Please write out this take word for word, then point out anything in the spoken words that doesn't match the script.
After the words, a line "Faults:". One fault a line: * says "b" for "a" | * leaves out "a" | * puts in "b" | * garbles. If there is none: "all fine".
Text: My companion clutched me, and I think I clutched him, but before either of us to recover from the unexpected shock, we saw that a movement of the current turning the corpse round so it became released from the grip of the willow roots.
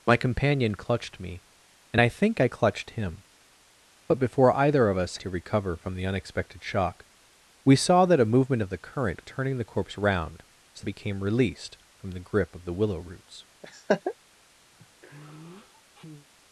My companion clutched me, and I think I clutched him, but before either of us to recover from the unexpected shock, we saw that a movement of the current turning the corpse round so it became released from the grip of the willow roots.
Faults:
all fine